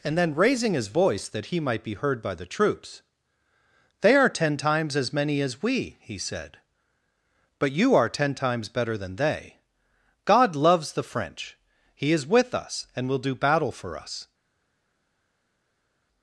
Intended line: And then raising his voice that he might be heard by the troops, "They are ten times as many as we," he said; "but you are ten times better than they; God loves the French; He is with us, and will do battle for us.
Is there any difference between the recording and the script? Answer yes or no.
no